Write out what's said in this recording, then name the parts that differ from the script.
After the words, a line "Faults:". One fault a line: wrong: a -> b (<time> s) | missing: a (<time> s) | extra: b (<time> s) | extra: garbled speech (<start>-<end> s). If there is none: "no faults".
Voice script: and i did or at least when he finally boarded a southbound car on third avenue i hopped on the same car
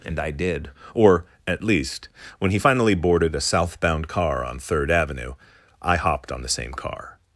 and i did or at least when he finally boarded a southbound car on third avenue i hopped on the same car
Faults:
no faults